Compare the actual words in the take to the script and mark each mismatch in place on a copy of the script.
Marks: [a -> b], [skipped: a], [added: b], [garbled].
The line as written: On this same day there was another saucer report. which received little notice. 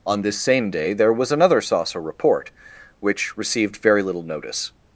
On this same day there was another saucer report. which received [added: very] little notice.